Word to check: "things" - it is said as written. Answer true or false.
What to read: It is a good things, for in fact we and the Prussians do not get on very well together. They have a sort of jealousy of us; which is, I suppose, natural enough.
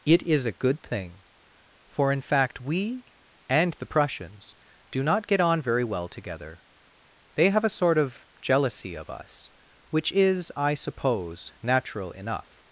false